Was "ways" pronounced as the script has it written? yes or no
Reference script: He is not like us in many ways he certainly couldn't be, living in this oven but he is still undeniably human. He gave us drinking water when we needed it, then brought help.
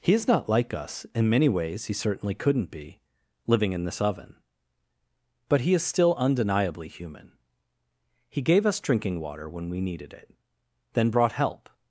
yes